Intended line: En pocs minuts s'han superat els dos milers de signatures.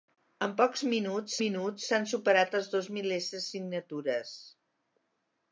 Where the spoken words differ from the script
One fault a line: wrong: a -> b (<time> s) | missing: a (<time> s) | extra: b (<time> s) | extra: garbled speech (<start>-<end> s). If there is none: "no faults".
extra: minuts (1.4 s)